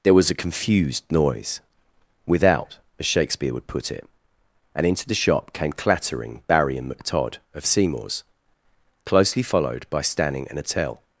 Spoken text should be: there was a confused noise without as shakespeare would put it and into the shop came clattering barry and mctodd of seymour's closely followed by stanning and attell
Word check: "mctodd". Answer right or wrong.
right